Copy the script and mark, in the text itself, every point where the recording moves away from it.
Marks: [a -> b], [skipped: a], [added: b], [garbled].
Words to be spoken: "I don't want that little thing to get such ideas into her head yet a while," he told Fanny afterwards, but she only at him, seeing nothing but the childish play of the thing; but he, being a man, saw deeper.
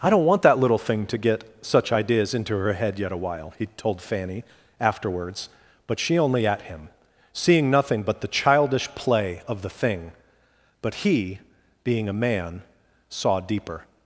"I don't want that little thing to get such ideas into her head yet a while," he told Fanny afterwards, but she only at him, seeing nothing but the childish play of the thing; but he, being a man, saw deeper.